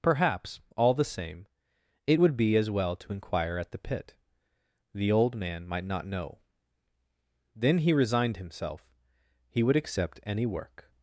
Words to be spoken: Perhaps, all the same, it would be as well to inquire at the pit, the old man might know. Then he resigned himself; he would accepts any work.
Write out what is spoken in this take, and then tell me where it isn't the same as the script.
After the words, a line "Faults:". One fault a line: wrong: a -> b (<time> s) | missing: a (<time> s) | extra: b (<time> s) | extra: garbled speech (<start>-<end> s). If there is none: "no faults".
Perhaps, all the same, it would be as well to inquire at the pit, the old man might not know. Then he resigned himself; he would accept any work.
Faults:
extra: not (5.8 s)
wrong: accepts -> accept (9.8 s)